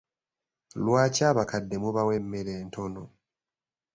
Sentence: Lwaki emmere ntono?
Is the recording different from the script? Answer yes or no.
yes